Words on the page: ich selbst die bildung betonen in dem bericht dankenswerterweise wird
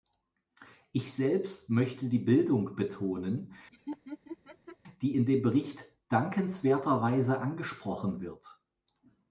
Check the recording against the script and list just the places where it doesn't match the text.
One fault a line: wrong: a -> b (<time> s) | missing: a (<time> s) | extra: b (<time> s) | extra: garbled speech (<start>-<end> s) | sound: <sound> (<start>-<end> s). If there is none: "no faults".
extra: möchte (1.7 s)
sound: laugh (3.7-4.8 s)
extra: die (5.0 s)
extra: angesprochen (7.4 s)